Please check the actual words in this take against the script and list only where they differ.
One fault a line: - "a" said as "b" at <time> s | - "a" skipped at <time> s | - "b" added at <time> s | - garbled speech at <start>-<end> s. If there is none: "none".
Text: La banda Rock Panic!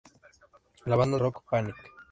none